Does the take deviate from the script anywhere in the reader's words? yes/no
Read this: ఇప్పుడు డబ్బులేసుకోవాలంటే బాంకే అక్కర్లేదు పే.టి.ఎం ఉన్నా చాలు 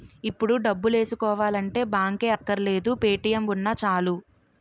no